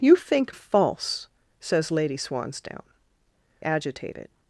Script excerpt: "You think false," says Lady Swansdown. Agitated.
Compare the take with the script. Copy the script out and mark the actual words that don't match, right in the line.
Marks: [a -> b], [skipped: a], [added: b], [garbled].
"You think false," says Lady Swansdown. Agitated.